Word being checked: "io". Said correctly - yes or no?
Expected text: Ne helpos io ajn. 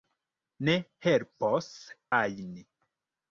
no